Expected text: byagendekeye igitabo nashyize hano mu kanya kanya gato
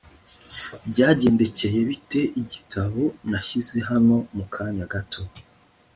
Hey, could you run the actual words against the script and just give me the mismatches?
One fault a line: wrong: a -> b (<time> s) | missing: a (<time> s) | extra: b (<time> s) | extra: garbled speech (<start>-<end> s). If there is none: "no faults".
extra: bite (1.9 s)
missing: kanya (4.9 s)